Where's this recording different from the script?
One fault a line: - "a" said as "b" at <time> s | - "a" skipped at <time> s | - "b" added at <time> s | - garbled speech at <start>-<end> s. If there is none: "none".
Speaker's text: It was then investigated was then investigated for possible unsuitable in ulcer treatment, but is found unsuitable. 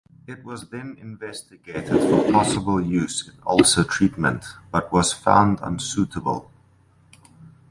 - "was then investigated" skipped at 1.9 s
- "unsuitable" said as "use" at 2.8 s
- "is" said as "was" at 4.9 s